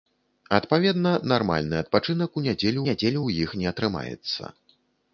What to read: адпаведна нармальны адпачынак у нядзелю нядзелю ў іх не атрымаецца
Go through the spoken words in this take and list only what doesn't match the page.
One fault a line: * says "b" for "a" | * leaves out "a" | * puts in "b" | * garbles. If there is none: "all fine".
all fine